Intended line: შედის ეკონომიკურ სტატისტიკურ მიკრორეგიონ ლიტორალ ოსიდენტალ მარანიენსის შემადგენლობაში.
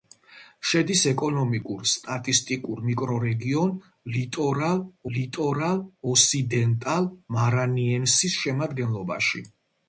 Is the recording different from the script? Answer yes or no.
yes